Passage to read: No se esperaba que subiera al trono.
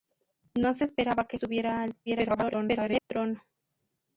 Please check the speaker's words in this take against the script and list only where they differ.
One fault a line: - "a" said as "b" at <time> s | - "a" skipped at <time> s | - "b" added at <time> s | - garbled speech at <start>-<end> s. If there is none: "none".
- garbled speech at 2.1-3.0 s